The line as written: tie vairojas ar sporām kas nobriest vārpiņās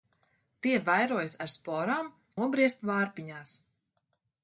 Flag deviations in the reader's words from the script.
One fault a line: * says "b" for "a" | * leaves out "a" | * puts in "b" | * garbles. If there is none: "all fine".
* leaves out "kas"